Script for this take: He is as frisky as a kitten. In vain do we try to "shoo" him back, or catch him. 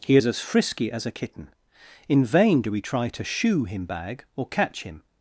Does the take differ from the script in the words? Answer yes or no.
yes